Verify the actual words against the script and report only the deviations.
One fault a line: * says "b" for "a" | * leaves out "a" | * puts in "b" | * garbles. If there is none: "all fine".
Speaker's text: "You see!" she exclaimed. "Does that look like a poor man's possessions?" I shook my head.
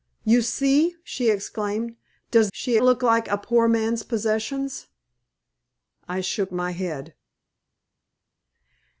* says "she" for "that"